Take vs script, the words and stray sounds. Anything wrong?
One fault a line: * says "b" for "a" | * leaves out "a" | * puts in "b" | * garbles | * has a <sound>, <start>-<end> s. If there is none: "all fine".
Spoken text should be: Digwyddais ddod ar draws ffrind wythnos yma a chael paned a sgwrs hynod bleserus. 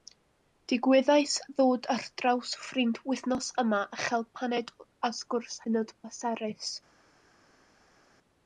all fine